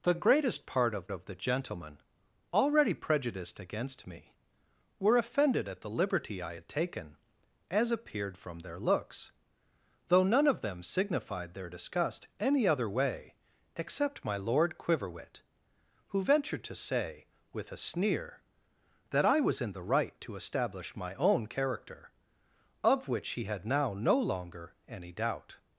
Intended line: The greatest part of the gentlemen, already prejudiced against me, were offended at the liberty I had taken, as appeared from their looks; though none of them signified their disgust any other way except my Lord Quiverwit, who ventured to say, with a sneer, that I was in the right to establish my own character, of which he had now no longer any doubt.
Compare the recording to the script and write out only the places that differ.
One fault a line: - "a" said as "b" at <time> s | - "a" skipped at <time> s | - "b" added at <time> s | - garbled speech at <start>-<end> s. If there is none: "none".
- "of" added at 1.1 s